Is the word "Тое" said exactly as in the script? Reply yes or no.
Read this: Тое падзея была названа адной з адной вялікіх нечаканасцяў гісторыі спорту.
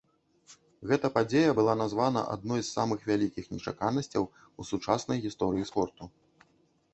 no